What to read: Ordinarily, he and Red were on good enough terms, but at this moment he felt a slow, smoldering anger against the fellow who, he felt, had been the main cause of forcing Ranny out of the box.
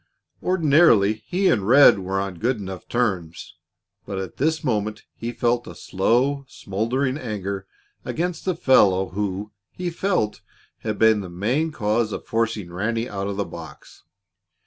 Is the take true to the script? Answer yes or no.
yes